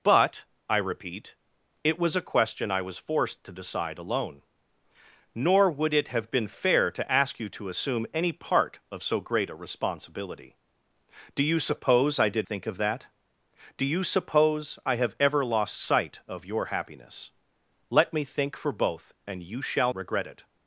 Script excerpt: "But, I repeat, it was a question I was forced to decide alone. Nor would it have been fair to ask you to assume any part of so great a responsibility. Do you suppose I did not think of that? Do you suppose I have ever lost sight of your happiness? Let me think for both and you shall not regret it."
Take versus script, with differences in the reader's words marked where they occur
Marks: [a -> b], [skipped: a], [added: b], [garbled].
"But, I repeat, it was a question I was forced to decide alone. Nor would it have been fair to ask you to assume any part of so great a responsibility. Do you suppose I did [skipped: not] think of that? Do you suppose I have ever lost sight of your happiness? Let me think for both and you shall [skipped: not] regret it."